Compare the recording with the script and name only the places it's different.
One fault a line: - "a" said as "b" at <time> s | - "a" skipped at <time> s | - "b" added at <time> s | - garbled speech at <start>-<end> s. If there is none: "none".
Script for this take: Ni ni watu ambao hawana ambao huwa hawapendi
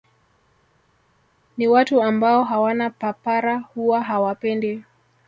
- "ni" skipped at 1.7 s
- "ambao" said as "papara" at 2.9 s